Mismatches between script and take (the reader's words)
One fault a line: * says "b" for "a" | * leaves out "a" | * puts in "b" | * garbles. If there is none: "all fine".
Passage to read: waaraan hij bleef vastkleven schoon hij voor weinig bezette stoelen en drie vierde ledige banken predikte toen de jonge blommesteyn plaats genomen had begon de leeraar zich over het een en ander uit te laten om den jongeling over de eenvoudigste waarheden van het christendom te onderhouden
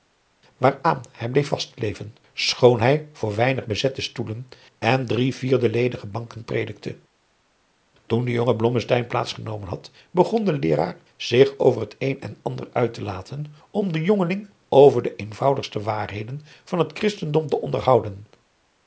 all fine